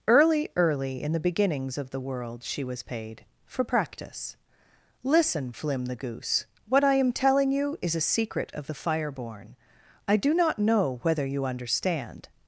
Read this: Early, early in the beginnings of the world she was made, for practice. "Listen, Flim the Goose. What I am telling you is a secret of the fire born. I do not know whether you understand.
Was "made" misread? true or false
true